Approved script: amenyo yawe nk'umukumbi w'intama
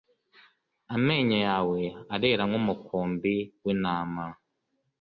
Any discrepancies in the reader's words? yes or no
yes